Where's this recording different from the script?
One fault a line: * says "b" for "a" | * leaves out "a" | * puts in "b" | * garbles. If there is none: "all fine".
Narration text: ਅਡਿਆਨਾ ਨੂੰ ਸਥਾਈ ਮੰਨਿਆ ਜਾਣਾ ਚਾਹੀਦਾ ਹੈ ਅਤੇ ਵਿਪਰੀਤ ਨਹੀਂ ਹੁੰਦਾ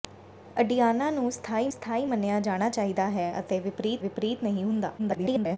* puts in "ਸਥਾਈ"
* puts in "ਵਿਪਰੀਤ"
* garbles